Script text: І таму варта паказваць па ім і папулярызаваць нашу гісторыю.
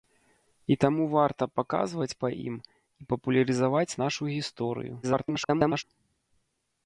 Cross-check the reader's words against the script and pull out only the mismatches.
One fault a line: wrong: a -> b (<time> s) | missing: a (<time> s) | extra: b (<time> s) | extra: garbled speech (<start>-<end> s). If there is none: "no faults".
extra: garbled speech (5.0-5.8 s)